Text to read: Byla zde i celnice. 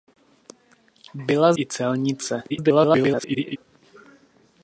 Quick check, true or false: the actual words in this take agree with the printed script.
false